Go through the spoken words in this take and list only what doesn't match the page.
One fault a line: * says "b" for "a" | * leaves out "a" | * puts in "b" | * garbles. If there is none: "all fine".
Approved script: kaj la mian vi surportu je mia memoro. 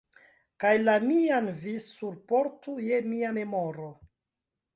all fine